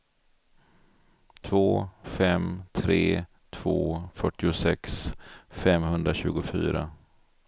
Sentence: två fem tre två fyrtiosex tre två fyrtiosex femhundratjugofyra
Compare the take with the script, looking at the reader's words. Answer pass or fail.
fail